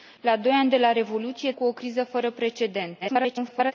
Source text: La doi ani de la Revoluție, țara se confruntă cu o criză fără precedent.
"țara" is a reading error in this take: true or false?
true